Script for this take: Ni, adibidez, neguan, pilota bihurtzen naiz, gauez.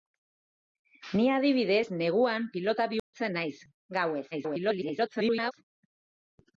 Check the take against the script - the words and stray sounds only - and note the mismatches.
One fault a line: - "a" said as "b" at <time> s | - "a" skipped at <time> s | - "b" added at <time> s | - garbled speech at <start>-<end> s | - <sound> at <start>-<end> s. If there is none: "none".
- dropout at 3.0-3.1 s
- garbled speech at 4.3-5.5 s